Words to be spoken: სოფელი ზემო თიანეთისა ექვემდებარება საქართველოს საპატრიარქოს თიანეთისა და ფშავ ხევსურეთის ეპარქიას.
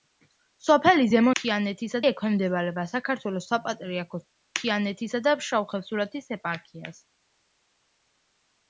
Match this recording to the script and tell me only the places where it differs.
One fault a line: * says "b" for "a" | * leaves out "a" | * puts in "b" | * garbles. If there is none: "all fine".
all fine